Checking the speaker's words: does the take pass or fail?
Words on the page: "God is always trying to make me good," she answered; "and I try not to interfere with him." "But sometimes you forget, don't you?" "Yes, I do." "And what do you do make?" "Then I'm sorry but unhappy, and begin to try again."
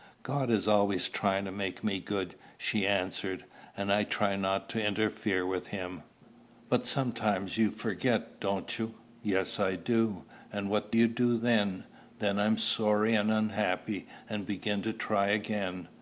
fail